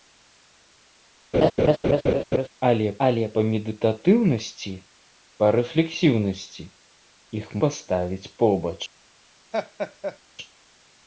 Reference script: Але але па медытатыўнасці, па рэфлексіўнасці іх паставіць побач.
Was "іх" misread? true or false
false